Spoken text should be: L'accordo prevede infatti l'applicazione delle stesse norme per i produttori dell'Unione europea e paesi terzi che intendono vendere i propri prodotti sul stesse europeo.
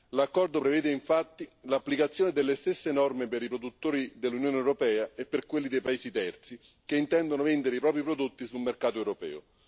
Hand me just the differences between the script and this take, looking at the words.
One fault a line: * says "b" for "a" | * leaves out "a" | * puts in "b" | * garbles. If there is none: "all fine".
* puts in "per quelli dei"
* says "mercato" for "stesse"